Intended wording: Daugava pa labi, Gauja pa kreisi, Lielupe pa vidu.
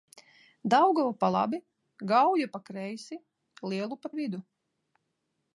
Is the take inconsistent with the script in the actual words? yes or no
yes